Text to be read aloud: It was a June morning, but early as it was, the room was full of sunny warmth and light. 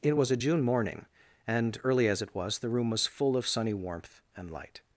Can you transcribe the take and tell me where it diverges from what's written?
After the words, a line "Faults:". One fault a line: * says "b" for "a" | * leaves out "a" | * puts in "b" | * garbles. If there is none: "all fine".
It was a June morning, and early as it was, the room was full of sunny warmth and light.
Faults:
* says "and" for "but"